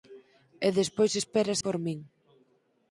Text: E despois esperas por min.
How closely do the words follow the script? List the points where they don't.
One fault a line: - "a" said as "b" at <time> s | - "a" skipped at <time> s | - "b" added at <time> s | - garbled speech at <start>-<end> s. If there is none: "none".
none